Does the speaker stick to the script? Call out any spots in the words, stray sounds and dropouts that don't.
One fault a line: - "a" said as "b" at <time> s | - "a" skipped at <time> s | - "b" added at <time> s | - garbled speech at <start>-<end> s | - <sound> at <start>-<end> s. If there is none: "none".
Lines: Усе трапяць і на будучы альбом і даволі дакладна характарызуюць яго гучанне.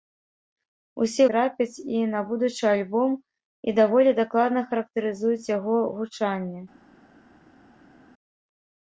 none